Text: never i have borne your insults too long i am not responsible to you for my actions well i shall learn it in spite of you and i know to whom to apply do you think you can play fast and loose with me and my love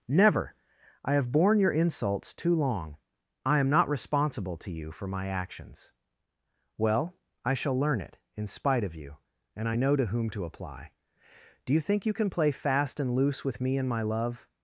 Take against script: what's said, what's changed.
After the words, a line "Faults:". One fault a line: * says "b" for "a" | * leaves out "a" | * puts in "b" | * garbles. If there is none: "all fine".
never i have borne your insults too long i am not responsible to you for my actions well i shall learn it in spite of you and i know to whom to apply do you think you can play fast and loose with me and my love
Faults:
all fine